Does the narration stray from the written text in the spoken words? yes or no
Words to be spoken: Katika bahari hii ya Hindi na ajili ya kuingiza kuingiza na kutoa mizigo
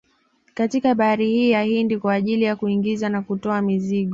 yes